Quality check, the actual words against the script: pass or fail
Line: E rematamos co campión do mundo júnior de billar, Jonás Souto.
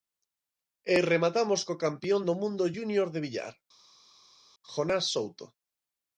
pass